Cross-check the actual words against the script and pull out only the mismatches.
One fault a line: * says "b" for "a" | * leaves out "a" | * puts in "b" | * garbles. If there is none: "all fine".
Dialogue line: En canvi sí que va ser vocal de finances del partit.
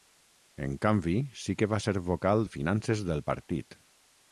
all fine